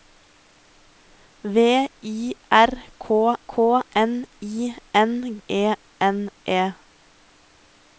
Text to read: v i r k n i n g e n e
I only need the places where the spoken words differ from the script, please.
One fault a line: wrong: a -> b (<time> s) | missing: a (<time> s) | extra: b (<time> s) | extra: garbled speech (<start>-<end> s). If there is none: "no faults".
extra: k (3.5 s)
missing: g (5.4 s)